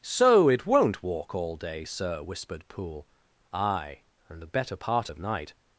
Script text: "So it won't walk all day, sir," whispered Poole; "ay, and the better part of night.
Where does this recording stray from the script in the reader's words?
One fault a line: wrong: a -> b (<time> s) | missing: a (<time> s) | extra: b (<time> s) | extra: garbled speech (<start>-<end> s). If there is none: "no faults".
no faults